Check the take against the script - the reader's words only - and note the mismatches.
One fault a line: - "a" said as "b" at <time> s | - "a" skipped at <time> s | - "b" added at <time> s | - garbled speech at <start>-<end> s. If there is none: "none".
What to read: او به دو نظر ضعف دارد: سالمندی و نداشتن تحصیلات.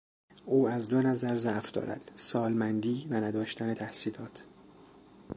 - "به" said as "از" at 0.7 s